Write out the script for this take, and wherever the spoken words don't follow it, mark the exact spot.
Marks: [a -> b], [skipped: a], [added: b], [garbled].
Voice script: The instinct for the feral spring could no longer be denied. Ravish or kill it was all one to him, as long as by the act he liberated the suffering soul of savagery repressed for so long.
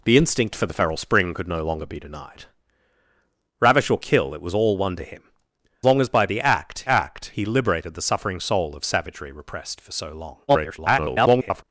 The instinct for the feral spring could no longer be denied. Ravish or kill it was all one to him, [skipped: as] long as by the act [added: act] he liberated the suffering soul of savagery repressed for so long. [garbled]